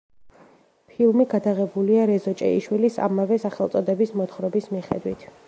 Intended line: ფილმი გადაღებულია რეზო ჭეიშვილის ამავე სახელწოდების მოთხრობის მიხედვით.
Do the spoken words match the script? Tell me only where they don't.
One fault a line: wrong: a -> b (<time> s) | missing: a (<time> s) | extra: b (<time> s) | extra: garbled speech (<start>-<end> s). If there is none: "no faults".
no faults